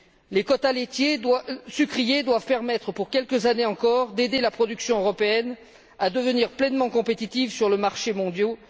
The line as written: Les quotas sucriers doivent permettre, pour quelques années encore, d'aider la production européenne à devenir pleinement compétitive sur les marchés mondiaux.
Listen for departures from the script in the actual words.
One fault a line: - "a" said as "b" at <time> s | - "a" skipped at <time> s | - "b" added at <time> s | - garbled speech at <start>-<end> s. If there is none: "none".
none